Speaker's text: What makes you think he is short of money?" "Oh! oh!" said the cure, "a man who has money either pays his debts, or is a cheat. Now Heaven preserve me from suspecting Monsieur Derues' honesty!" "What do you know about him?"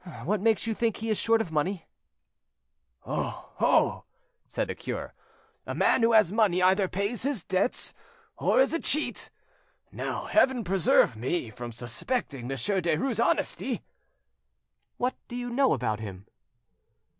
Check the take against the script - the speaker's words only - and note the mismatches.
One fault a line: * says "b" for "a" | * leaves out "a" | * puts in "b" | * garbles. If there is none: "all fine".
all fine